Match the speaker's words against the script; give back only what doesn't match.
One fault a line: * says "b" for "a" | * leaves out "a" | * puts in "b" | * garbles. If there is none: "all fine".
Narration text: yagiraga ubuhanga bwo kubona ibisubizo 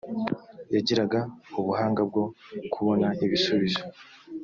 all fine